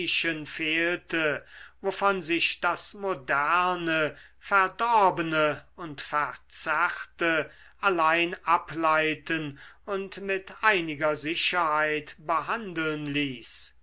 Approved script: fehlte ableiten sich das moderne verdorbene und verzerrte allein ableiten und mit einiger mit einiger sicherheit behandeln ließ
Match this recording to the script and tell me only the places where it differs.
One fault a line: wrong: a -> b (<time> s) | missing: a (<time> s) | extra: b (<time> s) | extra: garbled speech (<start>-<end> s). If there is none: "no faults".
wrong: ableiten -> wovon (1.8 s)
missing: mit einiger (11.2 s)